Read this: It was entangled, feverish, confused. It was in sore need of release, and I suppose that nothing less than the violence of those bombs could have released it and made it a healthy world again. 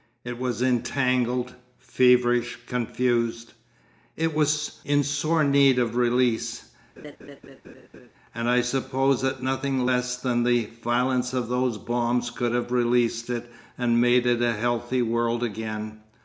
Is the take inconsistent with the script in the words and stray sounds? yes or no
yes